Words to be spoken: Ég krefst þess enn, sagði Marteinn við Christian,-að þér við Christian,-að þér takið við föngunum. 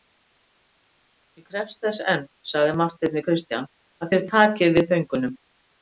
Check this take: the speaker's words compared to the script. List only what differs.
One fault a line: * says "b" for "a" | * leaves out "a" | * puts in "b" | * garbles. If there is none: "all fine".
* leaves out "við Christian,-að þér"